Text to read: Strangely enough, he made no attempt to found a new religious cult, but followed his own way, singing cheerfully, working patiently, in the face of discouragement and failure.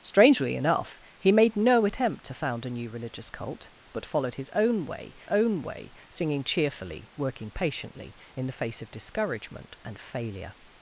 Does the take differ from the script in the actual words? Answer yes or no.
yes